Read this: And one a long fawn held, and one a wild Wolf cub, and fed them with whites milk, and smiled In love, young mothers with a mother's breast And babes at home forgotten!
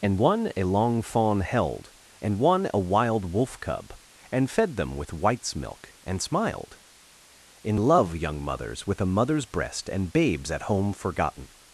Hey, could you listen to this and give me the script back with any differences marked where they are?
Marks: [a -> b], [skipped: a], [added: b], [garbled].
And one a long fawn held, and one a wild Wolf cub, and fed them with whites milk, and smiled In love, young mothers with a mother's breast And babes at home forgotten!